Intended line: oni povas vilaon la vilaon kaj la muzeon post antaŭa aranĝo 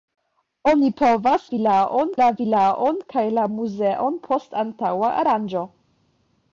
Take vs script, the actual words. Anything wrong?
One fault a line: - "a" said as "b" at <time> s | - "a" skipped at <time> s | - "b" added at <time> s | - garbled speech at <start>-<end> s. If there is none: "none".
none